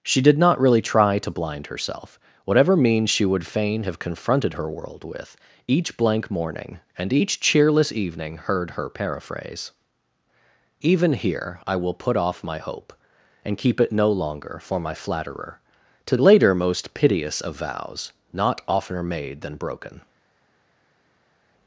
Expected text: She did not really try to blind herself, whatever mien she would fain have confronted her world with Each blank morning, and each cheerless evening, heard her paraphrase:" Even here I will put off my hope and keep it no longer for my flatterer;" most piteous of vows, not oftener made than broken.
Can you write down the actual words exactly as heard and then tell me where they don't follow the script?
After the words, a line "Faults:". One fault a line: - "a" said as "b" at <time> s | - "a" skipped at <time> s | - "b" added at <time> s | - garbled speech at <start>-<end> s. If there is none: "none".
She did not really try to blind herself, whatever means she would fain have confronted her world with Each blank morning, and each cheerless evening, heard her paraphrase:" Even here I will put off my hope and keep it no longer for my flatterer;" to later most piteous of vows, not oftener made than broken.
Faults:
- "mien" said as "means" at 2.8 s
- "to later" added at 16.1 s